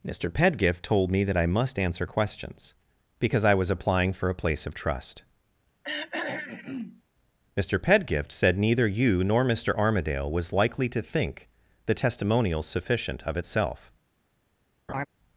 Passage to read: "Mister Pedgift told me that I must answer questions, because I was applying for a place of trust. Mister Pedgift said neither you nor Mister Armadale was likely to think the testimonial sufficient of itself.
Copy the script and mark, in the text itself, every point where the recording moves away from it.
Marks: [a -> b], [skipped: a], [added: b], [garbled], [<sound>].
"Mister Pedgift told me that I must answer questions, because I was applying for a place of trust. [throat clearing] Mister Pedgift said neither you nor Mister Armadale was likely to think the testimonial sufficient of itself. [laugh]